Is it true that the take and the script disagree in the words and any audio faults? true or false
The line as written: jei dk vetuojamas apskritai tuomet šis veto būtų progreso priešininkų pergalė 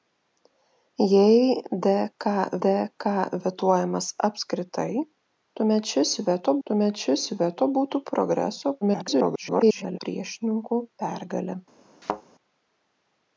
true